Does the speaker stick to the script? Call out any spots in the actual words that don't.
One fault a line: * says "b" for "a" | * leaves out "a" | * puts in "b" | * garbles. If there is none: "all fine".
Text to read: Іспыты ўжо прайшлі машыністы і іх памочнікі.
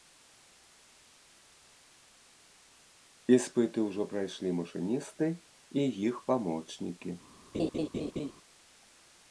all fine